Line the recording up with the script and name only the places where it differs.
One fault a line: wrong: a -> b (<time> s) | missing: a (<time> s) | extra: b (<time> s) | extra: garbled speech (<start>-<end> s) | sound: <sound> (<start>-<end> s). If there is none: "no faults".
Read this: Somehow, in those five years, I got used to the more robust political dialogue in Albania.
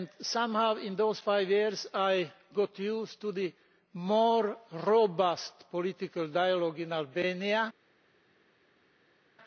no faults